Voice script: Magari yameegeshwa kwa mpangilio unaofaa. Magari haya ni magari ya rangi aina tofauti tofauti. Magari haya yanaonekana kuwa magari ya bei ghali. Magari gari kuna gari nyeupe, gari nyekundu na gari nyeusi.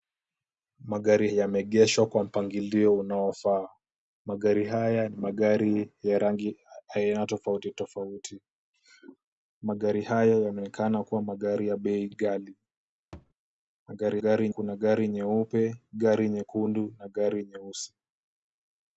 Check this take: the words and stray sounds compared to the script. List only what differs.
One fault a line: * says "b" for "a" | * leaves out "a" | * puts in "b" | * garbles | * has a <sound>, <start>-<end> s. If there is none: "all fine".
* has a thud, 13.1-13.3 s